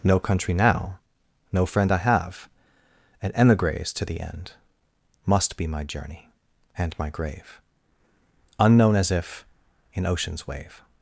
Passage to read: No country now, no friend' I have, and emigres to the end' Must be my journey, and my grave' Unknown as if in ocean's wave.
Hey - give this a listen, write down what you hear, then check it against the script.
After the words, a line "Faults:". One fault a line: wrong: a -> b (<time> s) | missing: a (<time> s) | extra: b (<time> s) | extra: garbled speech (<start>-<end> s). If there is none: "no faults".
No country now, no friend' I have, and emigres to the end' Must be my journey, and my grave' Unknown as if in ocean's wave.
Faults:
no faults